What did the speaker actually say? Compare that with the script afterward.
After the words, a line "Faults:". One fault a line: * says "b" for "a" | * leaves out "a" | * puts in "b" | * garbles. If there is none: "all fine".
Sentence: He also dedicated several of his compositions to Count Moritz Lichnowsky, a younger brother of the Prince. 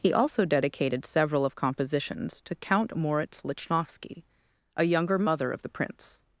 He also dedicated several of compositions to Count Moritz Lichnowsky, a younger mother of the Prince.
Faults:
* leaves out "his"
* says "mother" for "brother"